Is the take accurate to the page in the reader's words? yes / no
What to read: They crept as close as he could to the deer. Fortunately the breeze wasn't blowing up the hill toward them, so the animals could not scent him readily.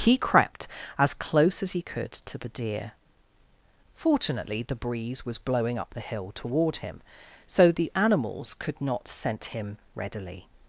no